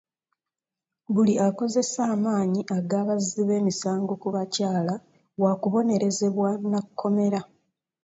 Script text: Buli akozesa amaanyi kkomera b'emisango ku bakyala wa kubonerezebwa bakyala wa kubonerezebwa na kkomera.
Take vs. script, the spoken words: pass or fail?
fail